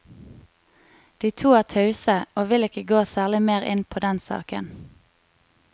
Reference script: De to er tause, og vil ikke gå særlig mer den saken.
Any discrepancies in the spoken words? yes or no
yes